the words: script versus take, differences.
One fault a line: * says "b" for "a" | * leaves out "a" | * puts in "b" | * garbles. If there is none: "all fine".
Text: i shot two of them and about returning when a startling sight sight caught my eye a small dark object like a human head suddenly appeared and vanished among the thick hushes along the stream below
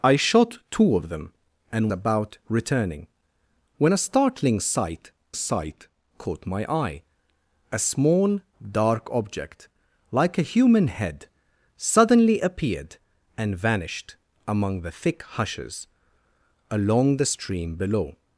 all fine